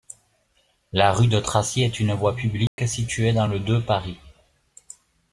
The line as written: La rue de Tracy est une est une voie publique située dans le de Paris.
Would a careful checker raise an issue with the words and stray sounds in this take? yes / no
yes